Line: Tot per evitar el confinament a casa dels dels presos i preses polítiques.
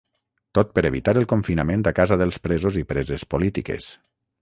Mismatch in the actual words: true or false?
true